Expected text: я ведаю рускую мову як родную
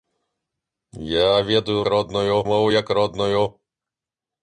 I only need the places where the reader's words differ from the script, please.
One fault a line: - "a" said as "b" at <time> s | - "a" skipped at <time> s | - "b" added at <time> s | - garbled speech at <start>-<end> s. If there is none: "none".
- "рускую" said as "родную" at 1.9 s